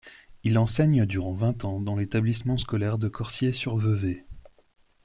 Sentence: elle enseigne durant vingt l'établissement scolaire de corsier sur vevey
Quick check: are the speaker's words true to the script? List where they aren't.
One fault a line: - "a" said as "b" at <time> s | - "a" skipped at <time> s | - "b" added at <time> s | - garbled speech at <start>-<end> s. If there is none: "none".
- "elle" said as "il" at 0.5 s
- "ans dans" added at 1.6 s